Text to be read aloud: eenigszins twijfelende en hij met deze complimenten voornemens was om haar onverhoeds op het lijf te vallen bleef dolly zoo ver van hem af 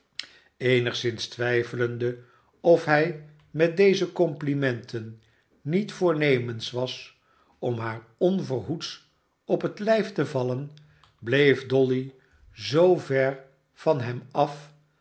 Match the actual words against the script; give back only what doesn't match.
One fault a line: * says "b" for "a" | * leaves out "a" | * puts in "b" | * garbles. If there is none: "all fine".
* says "of" for "en"
* puts in "niet"